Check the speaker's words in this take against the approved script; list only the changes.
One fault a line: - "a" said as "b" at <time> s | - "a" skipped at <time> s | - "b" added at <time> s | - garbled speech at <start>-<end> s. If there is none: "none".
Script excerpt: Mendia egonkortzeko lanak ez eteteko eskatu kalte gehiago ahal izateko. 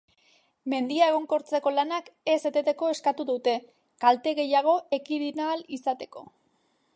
- "dute" added at 3.3 s
- "ekidin" added at 5.0 s